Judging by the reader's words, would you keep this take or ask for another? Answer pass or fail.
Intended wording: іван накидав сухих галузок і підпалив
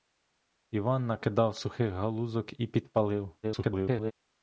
fail